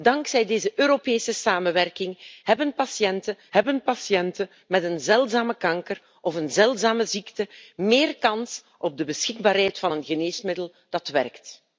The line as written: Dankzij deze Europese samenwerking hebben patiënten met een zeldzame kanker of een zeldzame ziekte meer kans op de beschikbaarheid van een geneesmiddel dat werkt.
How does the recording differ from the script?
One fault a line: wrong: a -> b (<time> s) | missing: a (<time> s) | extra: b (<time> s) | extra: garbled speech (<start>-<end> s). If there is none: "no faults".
extra: hebben patiënten (3.5 s)